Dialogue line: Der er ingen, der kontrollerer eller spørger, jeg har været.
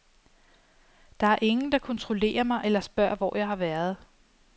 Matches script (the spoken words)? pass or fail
fail